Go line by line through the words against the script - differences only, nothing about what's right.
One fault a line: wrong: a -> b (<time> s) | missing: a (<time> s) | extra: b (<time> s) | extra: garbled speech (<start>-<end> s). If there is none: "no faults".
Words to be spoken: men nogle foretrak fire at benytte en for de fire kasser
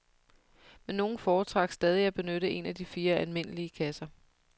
wrong: fire -> stadig (1.7 s)
wrong: for -> af (2.6 s)
extra: almindelige (3.1 s)